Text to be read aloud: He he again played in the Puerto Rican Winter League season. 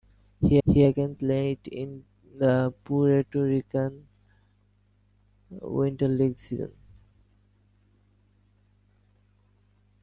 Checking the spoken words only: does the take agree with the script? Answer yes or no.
yes